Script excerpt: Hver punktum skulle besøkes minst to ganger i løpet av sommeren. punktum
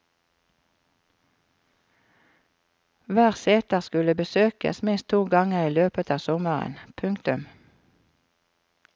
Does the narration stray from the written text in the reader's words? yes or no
yes